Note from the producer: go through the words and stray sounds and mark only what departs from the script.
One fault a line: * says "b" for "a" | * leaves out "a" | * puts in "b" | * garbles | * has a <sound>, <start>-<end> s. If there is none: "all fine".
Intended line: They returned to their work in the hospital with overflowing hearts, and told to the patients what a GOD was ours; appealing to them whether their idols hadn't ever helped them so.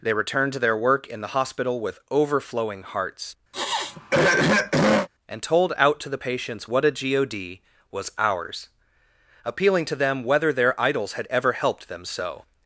* has a throat clearing, 3.5-5.1 s
* puts in "out"
* says "had" for "hadn't"